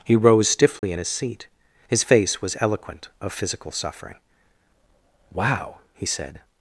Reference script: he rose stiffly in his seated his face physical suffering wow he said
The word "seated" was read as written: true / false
false